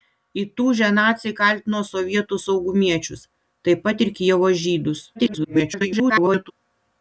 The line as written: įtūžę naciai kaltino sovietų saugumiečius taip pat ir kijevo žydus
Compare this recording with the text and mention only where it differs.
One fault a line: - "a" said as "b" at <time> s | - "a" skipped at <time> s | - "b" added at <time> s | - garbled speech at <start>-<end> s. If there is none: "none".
- garbled speech at 5.1-6.5 s